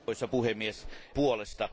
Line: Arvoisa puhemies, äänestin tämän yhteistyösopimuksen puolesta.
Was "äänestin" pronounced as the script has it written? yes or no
no